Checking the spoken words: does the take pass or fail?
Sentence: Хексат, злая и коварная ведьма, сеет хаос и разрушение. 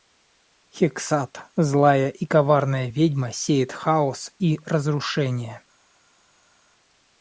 pass